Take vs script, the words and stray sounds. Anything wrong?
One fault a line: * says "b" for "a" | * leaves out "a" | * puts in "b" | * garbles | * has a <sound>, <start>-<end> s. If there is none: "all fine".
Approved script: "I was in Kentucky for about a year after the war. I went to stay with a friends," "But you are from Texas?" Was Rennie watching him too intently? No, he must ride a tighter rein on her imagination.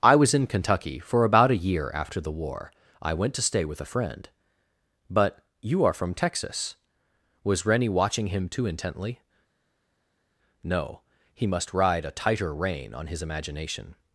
* says "friend" for "friends"
* says "his" for "her"